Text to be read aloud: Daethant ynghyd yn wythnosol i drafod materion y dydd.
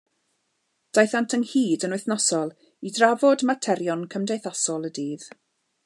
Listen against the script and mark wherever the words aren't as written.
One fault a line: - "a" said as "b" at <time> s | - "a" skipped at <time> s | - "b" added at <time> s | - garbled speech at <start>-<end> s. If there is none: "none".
- "cymdeithasol" added at 4.2 s